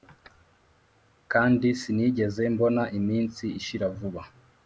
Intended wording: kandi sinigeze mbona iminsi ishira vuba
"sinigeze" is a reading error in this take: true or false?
false